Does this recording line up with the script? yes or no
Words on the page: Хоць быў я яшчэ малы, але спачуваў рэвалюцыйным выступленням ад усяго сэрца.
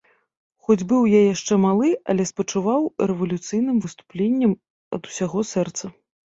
yes